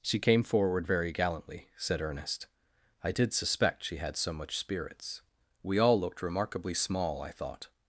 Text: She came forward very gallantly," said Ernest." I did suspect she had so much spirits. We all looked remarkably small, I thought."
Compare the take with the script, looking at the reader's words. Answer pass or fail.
pass